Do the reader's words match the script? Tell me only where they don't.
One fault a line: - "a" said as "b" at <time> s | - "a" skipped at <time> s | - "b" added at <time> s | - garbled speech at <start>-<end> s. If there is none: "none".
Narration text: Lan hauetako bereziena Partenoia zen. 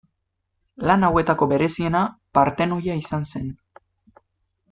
- "izan" added at 3.0 s